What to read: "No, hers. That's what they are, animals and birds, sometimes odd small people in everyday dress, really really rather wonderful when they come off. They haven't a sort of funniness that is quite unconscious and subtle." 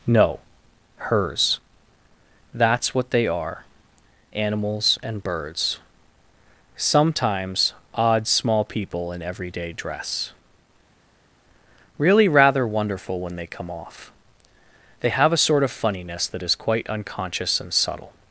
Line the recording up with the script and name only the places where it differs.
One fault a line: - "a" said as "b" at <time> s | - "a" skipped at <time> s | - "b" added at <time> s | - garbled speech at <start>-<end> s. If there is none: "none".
- "really" skipped at 12.3 s
- "haven't" said as "have" at 15.1 s